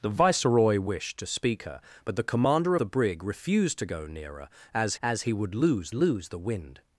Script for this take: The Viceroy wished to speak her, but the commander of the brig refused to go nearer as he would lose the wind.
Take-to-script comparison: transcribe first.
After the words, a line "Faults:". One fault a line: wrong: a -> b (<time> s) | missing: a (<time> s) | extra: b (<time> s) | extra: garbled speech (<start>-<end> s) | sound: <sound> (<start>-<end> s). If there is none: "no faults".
The Viceroy wished to speak her, but the commander the brig refused to go nearer as as he would lose lose the wind.
Faults:
missing: of (2.8 s)
extra: as (5.0 s)
extra: lose (5.9 s)